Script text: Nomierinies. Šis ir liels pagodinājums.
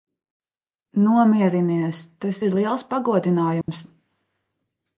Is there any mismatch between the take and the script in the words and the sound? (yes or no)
yes